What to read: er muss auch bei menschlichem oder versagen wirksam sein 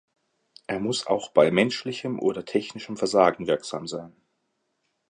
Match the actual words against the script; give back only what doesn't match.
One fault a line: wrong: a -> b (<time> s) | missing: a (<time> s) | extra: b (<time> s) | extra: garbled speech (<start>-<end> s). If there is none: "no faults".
extra: technischem (2.4 s)